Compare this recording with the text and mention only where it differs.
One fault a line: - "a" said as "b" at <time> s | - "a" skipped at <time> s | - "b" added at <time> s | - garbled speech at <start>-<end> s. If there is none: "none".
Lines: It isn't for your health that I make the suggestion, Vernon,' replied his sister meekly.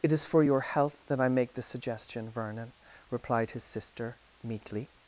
- "isn't" said as "is" at 0.1 s